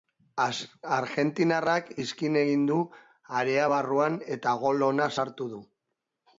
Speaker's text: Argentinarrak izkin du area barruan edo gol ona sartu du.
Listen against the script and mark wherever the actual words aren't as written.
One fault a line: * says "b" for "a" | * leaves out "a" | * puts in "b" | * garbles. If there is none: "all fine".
* puts in "egin"
* says "eta" for "edo"